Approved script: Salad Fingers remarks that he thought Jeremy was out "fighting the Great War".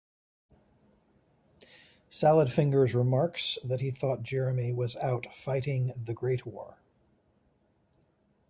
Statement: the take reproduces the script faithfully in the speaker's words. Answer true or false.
true